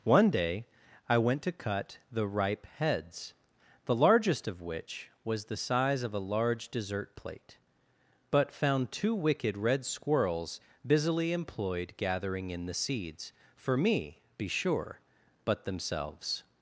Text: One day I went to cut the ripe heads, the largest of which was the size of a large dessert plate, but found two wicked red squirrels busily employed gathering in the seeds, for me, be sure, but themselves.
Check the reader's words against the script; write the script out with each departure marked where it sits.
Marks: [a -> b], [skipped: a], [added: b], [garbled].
One day I went to cut the ripe heads, the largest of which was the size of a large dessert plate, but found two wicked red squirrels busily employed gathering in the seeds, for me, be sure, but themselves.